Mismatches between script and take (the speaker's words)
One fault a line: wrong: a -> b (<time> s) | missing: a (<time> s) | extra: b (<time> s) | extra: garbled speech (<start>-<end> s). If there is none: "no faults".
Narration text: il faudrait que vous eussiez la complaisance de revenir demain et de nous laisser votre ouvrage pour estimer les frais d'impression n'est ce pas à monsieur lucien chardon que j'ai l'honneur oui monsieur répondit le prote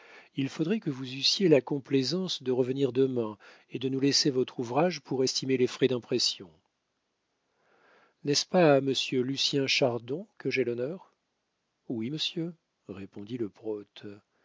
no faults